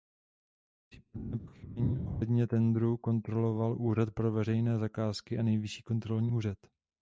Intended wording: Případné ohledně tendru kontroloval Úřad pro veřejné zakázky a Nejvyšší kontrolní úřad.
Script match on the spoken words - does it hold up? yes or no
no